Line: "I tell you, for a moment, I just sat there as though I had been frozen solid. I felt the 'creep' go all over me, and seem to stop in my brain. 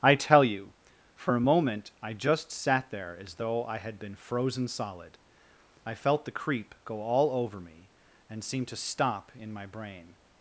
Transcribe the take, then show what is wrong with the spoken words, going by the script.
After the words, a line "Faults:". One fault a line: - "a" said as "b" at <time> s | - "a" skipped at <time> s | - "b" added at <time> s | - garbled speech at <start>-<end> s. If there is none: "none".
"I tell you, for a moment, I just sat there as though I had been frozen solid. I felt the 'creep' go all over me, and seem to stop in my brain.
Faults:
none